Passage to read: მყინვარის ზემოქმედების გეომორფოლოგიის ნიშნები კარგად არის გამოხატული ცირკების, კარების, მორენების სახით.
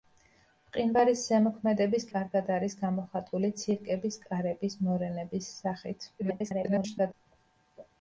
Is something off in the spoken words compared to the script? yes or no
yes